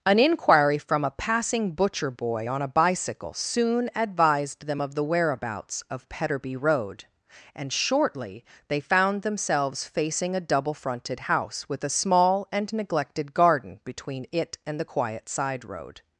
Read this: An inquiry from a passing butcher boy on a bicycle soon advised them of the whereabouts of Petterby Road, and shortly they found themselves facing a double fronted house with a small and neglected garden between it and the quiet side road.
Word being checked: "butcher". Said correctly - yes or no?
yes